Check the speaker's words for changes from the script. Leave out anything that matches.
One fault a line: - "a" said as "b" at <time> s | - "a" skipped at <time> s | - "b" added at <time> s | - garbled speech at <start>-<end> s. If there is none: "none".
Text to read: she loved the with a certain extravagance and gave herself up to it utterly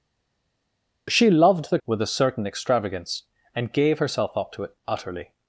none